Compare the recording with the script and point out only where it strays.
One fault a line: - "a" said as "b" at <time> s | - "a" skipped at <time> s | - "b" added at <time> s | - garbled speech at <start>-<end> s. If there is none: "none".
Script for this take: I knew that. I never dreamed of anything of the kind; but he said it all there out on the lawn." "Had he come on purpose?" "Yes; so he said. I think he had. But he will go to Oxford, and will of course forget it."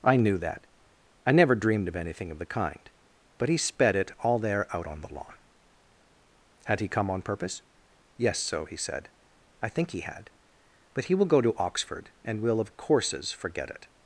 - "said" said as "sped" at 3.6 s
- "course" said as "courses" at 12.8 s